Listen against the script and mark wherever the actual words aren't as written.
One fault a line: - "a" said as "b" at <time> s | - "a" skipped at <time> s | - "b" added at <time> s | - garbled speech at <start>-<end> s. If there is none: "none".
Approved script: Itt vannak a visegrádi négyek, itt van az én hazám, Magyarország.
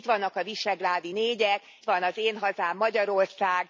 - "itt" skipped at 1.6 s